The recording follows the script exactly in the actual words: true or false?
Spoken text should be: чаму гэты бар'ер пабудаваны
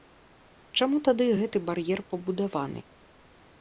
false